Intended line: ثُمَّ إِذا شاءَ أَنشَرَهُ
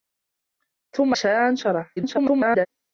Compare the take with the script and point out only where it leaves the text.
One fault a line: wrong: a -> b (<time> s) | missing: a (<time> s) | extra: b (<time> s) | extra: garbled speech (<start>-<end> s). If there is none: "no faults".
missing: إِذا (1.1 s)
extra: garbled speech (2.0-2.7 s)